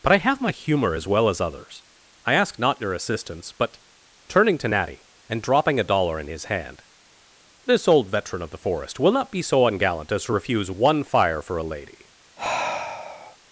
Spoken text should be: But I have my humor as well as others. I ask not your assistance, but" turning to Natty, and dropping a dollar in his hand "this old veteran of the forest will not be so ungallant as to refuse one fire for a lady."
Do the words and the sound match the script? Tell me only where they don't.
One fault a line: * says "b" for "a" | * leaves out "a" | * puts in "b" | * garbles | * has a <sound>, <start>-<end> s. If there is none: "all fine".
* has a sigh, 12.4-13.4 s